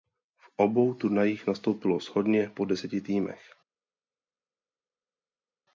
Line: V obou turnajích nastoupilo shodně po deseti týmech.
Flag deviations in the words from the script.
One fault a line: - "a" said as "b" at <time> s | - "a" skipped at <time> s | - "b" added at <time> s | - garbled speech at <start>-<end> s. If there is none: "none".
none